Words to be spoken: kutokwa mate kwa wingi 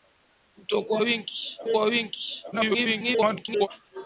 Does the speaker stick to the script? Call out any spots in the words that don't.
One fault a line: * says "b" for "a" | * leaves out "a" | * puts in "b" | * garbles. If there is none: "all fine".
* says "wingi" for "mate"
* garbles